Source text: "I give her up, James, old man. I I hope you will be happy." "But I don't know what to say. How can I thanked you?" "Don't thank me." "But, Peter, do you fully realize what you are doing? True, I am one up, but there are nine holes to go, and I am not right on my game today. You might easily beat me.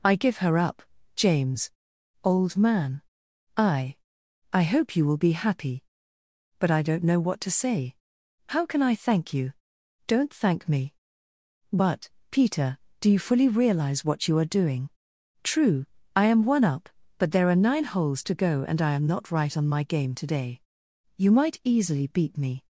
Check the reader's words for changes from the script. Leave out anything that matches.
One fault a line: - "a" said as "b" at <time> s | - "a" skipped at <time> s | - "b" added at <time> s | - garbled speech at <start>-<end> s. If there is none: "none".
- "thanked" said as "thank" at 8.9 s